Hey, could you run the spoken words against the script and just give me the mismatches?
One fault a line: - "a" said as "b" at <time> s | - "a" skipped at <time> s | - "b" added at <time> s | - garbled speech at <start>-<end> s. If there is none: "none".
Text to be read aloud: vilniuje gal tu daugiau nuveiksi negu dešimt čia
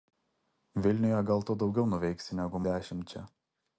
none